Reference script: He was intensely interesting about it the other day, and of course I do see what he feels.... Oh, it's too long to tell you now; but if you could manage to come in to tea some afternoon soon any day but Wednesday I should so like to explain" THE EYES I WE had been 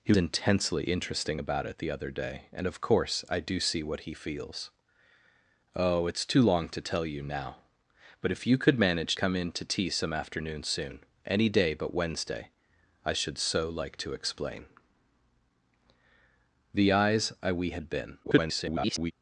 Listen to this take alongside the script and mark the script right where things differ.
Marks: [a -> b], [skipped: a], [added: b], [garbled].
He [skipped: was] intensely interesting about it the other day, and of course I do see what he feels.... Oh, it's too long to tell you now; but if you could manage [skipped: to] come in to tea some afternoon soon any day but Wednesday I should so like to explain" THE EYES I WE had been [garbled]